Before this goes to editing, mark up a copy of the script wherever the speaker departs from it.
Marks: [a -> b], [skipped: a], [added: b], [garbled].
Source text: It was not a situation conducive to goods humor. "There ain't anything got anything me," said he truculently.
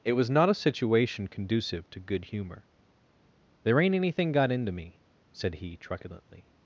It was not a situation conducive to [goods -> good] humor. "There ain't anything got [anything -> into] me," said he truculently.